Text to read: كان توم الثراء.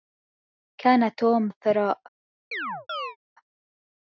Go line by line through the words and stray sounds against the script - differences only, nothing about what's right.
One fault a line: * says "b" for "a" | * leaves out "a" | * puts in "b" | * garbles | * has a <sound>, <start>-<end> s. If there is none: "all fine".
* has a chirp, 2.5-3.2 s